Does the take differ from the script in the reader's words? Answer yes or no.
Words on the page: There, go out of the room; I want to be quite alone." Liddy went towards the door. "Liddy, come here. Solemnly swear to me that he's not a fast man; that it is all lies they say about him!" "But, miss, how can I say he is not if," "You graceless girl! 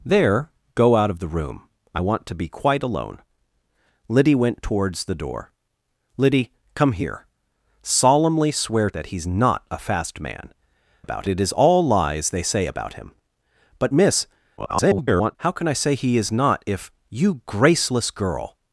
yes